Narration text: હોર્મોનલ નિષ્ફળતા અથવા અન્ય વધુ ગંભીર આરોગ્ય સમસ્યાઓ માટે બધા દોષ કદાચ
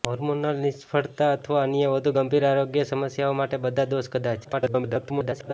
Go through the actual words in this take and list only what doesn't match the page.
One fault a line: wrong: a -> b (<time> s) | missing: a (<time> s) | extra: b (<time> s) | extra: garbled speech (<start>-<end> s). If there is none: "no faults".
extra: garbled speech (4.4-5.5 s)